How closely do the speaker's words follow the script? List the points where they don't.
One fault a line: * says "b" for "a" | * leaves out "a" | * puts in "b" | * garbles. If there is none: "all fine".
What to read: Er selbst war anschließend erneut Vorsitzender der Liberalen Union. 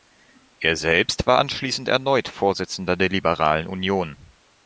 all fine